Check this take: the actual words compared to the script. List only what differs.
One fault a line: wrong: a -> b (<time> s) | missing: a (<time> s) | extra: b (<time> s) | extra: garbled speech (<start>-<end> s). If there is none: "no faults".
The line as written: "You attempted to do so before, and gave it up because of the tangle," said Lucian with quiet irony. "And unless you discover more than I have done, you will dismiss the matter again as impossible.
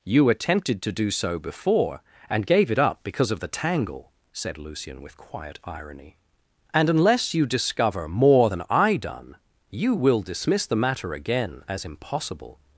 missing: have (9.0 s)